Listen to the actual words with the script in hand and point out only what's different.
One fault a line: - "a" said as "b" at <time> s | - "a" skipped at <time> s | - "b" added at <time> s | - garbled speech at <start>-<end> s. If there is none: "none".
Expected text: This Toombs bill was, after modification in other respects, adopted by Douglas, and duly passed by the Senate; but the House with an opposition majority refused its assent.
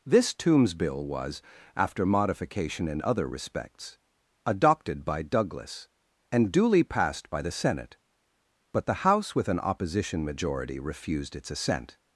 none